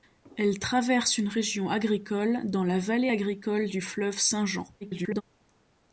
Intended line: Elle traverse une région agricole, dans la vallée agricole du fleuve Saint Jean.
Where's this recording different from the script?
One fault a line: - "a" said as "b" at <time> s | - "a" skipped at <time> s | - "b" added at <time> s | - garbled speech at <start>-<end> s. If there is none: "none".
- garbled speech at 4.8-5.2 s